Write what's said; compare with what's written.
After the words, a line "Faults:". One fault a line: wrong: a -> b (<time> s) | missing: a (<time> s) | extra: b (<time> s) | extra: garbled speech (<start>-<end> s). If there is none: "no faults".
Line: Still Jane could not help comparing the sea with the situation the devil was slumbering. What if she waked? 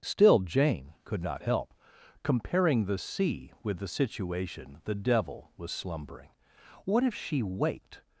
Still Jane could not help comparing the sea with the situation the devil was slumbering. What if she waked?
Faults:
no faults